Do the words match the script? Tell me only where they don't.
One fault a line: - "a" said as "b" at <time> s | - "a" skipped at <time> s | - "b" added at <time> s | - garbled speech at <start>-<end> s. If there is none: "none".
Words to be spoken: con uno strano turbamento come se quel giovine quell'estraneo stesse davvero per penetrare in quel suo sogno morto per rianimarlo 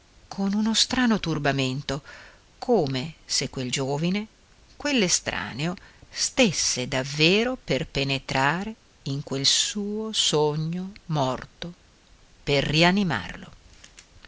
none